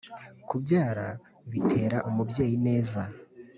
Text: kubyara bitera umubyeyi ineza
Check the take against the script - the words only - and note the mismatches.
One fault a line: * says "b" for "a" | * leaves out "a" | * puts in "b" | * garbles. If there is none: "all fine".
all fine